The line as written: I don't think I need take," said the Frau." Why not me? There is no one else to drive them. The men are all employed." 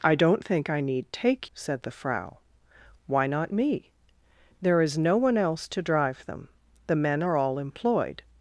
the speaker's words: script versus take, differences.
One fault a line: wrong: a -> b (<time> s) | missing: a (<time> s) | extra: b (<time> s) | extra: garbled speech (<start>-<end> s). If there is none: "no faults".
no faults